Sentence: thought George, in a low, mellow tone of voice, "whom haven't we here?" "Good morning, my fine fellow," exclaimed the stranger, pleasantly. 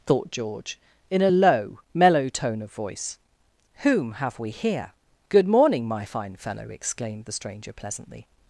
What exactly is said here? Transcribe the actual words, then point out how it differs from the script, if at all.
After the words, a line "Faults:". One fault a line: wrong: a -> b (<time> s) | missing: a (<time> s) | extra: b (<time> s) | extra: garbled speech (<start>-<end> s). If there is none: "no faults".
thought George, in a low, mellow tone of voice, "whom have we here?" "Good morning, my fine fellow," exclaimed the stranger, pleasantly.
Faults:
wrong: haven't -> have (4.1 s)